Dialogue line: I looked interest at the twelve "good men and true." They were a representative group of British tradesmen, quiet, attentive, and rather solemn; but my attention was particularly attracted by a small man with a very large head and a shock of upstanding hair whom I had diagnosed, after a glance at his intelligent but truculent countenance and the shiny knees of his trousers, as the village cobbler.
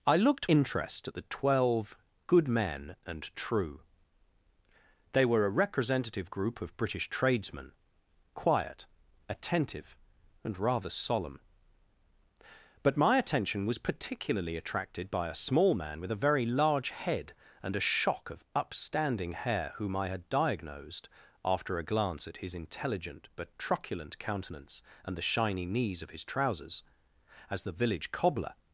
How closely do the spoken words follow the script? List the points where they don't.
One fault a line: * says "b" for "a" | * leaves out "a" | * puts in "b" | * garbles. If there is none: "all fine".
all fine